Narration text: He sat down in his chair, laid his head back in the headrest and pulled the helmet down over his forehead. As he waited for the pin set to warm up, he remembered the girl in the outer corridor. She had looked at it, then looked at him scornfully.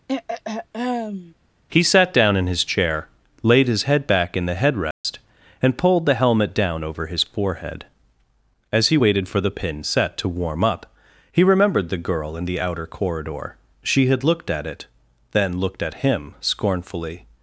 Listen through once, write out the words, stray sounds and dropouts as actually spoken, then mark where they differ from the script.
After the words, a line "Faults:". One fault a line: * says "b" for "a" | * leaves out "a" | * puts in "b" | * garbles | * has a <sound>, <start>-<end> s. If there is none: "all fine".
He sat down in his chair, laid his head back in the headrest and pulled the helmet down over his forehead. As he waited for the pin set to warm up, he remembered the girl in the outer corridor. She had looked at it, then looked at him scornfully.
Faults:
* has a throat clearing, 0.1-1.3 s
* has a dropout, 4.9-5.0 s